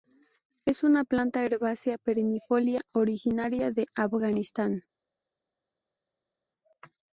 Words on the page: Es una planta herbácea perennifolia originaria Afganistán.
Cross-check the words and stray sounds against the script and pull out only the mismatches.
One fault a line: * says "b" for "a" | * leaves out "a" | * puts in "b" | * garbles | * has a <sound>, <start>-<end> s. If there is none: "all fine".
* puts in "de"